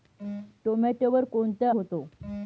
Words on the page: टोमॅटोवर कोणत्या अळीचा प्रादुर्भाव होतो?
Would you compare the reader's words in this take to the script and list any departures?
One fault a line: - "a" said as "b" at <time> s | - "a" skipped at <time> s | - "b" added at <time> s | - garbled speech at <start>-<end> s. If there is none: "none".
- "अळीचा प्रादुर्भाव" skipped at 1.7 s